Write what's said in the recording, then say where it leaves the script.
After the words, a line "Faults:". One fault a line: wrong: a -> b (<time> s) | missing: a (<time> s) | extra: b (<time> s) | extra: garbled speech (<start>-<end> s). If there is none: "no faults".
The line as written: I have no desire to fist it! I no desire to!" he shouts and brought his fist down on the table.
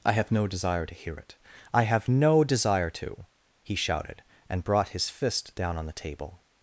I have no desire to hear it! I have no desire to!" he shouted and brought his fist down on the table.
Faults:
wrong: fist -> hear (0.9 s)
extra: have (1.8 s)
wrong: shouts -> shouted (3.7 s)